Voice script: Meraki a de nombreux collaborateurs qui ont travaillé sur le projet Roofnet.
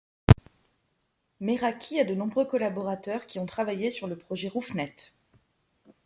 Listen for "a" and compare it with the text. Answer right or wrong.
right